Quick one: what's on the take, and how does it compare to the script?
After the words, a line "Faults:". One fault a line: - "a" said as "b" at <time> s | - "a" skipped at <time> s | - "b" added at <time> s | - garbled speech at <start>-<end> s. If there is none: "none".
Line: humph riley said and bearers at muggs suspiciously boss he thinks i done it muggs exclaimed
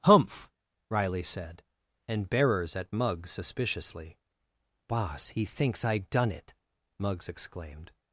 humph riley said and bearers at muggs suspiciously boss he thinks i done it muggs exclaimed
Faults:
none